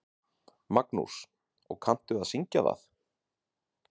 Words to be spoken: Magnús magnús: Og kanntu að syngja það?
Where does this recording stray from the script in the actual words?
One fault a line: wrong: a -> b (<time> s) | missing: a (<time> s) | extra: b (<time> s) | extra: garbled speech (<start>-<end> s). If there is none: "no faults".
missing: magnús (1.2 s)